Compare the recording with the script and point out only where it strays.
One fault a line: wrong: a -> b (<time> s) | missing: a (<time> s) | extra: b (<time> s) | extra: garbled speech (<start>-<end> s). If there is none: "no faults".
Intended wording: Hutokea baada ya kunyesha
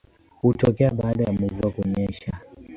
extra: mvua (1.3 s)